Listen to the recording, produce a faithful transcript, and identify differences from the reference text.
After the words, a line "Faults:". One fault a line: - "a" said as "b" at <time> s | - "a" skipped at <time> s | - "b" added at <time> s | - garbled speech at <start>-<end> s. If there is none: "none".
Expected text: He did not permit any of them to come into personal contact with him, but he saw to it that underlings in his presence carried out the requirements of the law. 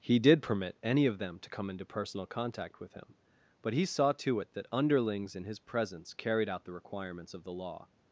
He did permit any of them to come into personal contact with him, but he saw to it that underlings in his presence carried out the requirements of the law.
Faults:
- "not" skipped at 0.4 s